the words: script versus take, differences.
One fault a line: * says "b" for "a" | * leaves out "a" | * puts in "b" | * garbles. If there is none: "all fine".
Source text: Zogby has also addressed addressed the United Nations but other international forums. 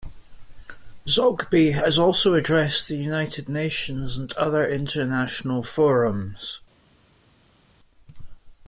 * leaves out "addressed"
* says "and" for "but"